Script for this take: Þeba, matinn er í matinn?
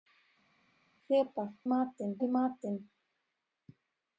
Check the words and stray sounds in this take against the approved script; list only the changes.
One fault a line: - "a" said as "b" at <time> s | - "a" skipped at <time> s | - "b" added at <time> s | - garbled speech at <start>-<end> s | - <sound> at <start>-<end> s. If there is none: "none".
none